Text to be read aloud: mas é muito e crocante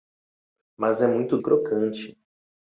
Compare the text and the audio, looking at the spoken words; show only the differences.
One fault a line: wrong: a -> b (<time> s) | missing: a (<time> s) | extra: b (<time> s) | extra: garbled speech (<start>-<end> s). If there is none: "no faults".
no faults